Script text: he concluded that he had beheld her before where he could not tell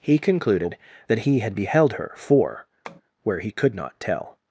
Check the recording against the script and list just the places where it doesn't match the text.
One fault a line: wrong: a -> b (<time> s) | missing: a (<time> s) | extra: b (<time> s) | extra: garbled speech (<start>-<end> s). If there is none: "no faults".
wrong: before -> for (2.1 s)